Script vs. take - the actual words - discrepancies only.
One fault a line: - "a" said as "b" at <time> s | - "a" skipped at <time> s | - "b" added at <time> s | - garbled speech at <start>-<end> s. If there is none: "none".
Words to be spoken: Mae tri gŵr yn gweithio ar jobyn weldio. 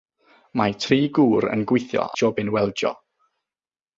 - "ar" skipped at 2.1 s